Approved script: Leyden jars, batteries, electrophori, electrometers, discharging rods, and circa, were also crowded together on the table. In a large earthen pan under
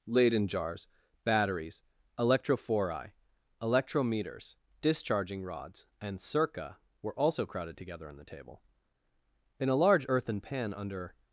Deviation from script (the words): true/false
false